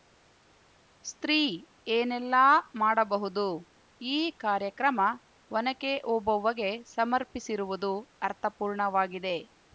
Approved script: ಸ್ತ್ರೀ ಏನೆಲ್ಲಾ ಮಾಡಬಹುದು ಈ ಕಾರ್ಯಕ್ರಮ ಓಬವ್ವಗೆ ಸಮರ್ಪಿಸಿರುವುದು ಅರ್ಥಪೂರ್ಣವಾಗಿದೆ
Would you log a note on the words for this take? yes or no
yes